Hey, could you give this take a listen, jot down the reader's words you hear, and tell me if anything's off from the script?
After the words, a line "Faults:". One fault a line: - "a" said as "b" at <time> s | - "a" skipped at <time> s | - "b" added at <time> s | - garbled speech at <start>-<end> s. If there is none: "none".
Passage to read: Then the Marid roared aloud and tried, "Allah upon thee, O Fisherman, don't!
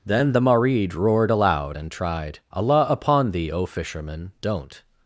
Then the Marid roared aloud and tried, "Allah upon thee, O Fisherman, don't!
Faults:
none